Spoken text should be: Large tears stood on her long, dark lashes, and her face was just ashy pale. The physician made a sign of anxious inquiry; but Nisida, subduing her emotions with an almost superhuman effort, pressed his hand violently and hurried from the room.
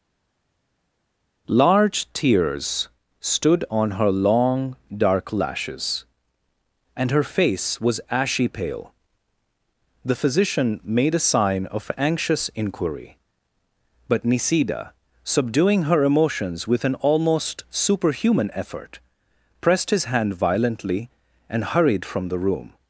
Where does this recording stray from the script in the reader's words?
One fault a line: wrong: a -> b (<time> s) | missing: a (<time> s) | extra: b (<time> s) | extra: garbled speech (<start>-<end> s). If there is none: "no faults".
missing: just (8.0 s)